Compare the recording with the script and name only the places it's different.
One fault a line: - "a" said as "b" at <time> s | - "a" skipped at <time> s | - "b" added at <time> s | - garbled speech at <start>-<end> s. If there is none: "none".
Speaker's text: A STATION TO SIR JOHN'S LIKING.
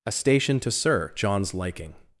none